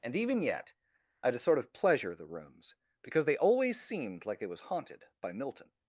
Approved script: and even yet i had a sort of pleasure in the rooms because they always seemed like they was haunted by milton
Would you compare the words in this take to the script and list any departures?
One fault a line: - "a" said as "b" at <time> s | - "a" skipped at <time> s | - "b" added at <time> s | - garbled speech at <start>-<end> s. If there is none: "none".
- "in" skipped at 2.1 s